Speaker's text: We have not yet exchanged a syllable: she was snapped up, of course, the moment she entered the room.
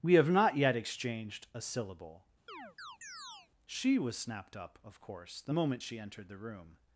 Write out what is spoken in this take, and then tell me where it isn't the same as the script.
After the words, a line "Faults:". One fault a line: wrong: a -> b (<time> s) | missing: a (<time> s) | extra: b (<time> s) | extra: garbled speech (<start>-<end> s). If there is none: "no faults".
We have not yet exchanged a syllable: she was snapped up, of course, the moment she entered the room.
Faults:
no faults